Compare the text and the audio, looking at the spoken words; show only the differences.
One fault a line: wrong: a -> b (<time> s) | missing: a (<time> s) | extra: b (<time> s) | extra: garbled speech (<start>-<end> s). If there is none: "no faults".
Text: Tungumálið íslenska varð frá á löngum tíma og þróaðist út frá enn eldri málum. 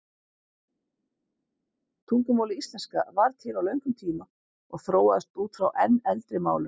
wrong: frá -> til (3.5 s)